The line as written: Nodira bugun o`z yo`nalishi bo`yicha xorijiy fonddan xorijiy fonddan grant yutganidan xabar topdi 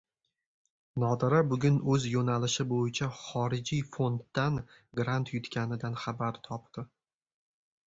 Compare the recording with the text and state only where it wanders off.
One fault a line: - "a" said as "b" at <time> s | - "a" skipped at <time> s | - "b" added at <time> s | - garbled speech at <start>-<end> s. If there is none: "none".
- "xorijiy fonddan" skipped at 4.6 s